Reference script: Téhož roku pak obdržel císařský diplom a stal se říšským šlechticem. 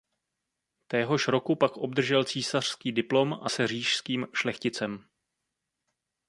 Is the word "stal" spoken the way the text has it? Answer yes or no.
no